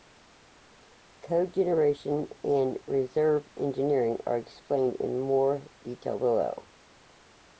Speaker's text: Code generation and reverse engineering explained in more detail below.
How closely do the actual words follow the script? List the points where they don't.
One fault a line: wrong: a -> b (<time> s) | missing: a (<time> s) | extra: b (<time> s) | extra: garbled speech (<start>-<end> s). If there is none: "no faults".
extra: are (4.2 s)